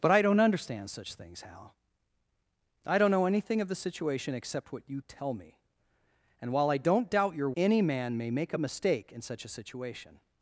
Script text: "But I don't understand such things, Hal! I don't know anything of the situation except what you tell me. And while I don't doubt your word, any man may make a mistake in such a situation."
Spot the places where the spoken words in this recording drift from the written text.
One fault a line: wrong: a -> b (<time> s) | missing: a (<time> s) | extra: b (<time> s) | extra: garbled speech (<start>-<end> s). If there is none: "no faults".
missing: word (7.5 s)